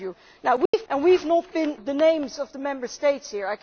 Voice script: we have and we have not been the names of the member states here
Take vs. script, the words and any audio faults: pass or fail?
fail